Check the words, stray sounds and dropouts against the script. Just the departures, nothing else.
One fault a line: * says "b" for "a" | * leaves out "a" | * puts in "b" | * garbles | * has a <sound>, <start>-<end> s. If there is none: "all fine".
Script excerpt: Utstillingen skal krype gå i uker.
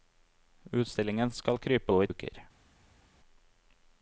all fine